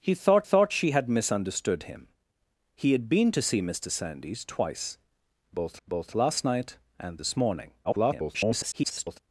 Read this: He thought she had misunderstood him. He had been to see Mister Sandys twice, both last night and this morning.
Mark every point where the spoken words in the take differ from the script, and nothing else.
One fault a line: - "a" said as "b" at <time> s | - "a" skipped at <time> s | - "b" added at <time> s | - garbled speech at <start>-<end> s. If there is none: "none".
- "thought" added at 0.4 s
- "both" added at 5.9 s
- garbled speech at 7.8-9.2 s